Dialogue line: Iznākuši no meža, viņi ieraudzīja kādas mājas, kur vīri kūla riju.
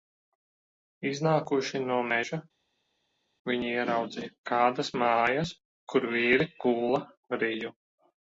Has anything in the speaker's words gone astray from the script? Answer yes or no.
no